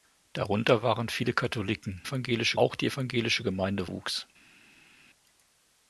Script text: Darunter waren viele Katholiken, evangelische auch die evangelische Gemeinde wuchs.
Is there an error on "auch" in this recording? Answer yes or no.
no